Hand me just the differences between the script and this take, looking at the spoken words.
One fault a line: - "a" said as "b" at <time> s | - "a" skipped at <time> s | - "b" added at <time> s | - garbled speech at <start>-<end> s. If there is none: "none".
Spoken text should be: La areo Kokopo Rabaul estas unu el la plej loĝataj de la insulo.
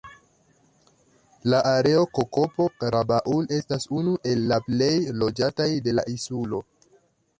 none